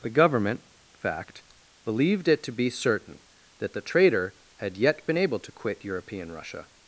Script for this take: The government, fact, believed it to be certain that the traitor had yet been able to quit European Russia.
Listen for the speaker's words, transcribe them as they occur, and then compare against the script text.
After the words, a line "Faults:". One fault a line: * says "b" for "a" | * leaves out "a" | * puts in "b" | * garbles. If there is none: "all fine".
The government, fact, believed it to be certain that the traitor had yet been able to quit European Russia.
Faults:
all fine